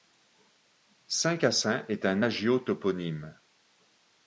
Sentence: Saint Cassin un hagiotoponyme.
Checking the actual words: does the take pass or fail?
fail